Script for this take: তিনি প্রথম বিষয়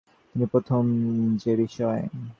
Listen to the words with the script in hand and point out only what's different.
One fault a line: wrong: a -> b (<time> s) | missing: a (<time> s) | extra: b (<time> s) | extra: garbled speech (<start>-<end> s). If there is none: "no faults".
extra: যে (1.4 s)